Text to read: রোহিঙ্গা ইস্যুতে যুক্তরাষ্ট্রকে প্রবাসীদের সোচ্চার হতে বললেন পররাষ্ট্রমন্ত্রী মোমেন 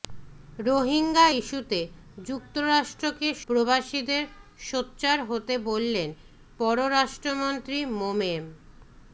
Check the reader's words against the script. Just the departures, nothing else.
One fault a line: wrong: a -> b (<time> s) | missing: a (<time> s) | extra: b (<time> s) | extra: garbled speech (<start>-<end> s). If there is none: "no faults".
no faults